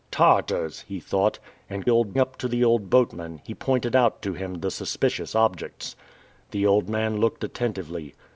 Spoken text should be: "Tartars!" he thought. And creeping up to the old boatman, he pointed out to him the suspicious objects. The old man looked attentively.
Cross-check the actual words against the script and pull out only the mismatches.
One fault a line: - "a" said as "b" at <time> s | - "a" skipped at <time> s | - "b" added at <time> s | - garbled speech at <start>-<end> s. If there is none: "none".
- "creeping" said as "old" at 1.9 s